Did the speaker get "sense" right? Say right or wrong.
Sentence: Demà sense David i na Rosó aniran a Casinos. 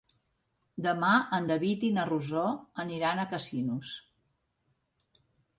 wrong